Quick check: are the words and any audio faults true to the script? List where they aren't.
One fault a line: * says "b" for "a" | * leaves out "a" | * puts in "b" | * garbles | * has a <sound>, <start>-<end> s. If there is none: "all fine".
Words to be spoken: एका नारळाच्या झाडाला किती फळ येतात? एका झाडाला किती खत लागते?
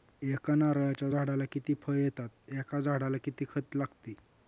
all fine